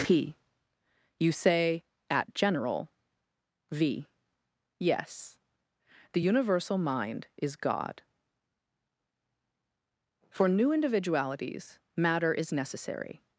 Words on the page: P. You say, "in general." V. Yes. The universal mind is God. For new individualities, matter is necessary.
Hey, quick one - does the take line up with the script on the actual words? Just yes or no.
no